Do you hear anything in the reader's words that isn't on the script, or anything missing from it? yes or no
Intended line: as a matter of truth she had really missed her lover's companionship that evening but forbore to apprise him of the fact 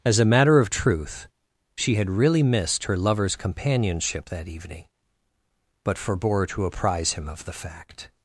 no